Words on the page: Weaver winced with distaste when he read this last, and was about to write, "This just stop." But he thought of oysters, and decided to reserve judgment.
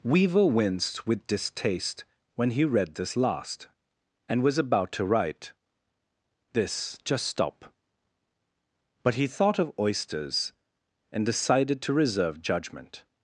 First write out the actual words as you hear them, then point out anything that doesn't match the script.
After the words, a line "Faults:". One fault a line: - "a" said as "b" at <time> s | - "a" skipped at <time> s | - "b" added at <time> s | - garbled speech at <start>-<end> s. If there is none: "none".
Weaver winced with distaste when he read this last, and was about to write, "This just stop." But he thought of oysters, and decided to reserve judgment.
Faults:
none